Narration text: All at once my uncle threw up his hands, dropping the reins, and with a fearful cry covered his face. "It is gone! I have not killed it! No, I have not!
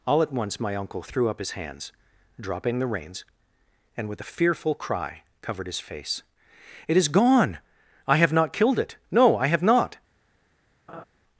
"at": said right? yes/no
yes